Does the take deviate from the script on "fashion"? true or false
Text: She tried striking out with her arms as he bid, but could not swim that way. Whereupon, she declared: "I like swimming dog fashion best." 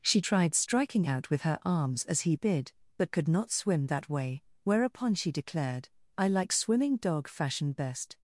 false